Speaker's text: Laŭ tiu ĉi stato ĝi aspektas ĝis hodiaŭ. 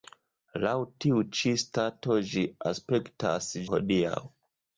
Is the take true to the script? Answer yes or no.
no